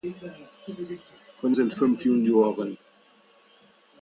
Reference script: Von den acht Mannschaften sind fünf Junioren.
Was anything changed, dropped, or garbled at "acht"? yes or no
yes